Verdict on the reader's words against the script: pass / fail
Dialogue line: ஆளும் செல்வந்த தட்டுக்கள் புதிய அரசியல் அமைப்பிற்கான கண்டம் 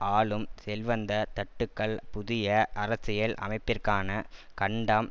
pass